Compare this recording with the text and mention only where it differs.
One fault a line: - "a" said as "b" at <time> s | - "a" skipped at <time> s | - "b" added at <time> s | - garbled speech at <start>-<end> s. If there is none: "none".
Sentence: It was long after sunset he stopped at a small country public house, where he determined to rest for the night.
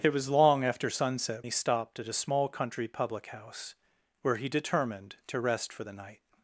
none